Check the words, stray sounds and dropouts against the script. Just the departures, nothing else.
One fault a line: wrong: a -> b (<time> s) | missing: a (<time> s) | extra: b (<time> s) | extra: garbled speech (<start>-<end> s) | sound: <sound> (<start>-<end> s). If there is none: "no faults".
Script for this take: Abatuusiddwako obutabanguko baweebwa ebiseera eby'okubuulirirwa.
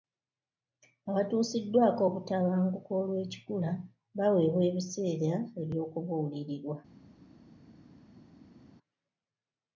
extra: olw'ekikula (3.0 s)